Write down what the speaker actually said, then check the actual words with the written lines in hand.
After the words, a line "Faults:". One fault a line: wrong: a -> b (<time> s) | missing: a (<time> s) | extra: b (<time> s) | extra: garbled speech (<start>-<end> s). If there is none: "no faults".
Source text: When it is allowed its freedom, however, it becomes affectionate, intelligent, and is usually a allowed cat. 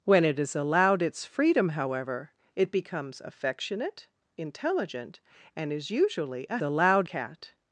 When it is allowed its freedom, however, it becomes affectionate, intelligent, and is usually a allowed cat.
Faults:
no faults